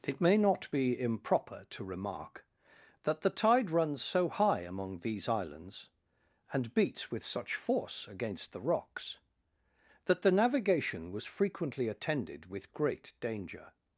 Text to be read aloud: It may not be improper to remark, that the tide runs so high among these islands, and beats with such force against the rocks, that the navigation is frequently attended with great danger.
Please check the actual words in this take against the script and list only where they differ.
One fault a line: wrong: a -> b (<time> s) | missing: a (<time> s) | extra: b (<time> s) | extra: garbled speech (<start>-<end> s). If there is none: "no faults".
wrong: is -> was (11.1 s)